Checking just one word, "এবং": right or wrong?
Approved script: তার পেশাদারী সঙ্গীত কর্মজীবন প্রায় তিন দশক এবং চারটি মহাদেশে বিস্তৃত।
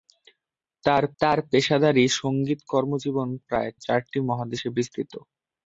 wrong